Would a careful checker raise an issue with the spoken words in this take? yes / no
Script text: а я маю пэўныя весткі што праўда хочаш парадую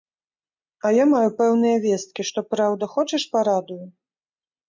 no